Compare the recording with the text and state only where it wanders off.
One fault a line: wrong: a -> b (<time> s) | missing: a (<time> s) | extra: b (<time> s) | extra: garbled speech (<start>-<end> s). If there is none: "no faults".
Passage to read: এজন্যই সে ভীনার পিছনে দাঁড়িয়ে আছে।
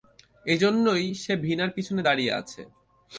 no faults